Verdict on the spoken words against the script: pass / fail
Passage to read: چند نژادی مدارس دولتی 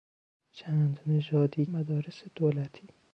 pass